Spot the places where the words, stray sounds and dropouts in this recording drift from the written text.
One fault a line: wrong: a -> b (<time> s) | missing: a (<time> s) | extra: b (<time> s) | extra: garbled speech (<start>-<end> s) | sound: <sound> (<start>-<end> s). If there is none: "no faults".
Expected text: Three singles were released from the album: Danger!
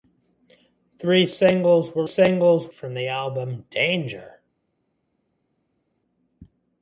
wrong: released -> singles (2.0 s)